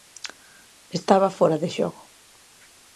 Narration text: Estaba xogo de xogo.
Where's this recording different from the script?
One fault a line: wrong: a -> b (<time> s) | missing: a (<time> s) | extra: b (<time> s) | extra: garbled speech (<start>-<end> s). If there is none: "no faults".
wrong: xogo -> fóra (1.4 s)